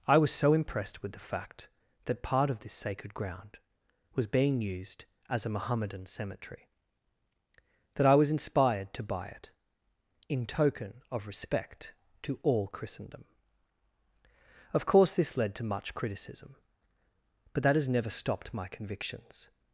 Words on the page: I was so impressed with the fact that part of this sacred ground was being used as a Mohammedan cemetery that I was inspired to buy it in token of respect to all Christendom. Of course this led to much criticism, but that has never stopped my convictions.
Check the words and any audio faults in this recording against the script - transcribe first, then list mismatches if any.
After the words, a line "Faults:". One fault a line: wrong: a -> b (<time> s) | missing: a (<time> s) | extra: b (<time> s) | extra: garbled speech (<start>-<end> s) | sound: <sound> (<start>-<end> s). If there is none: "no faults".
I was so impressed with the fact that part of this sacred ground was being used as a Mohammedan cemetery that I was inspired to buy it in token of respect to all Christendom. Of course this led to much criticism, but that has never stopped my convictions.
Faults:
no faults